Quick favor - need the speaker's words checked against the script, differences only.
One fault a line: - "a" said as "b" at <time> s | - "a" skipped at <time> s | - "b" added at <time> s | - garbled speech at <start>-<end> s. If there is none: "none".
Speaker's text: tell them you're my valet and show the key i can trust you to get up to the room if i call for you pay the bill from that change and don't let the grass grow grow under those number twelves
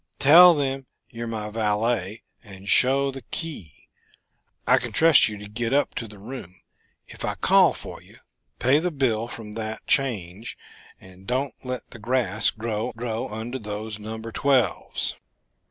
none